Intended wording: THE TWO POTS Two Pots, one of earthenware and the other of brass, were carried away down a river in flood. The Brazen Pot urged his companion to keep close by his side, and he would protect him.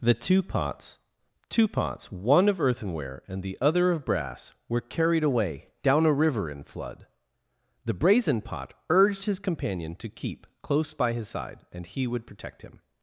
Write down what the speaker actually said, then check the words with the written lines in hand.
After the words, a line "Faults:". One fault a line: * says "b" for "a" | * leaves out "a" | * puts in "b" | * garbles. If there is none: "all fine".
THE TWO POTS Two Pots, one of earthenware and the other of brass, were carried away down a river in flood. The Brazen Pot urged his companion to keep close by his side, and he would protect him.
Faults:
all fine